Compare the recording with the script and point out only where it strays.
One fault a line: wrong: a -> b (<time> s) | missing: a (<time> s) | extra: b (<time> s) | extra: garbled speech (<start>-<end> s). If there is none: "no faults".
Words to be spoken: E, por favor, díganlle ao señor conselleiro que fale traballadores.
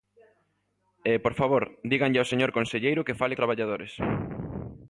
no faults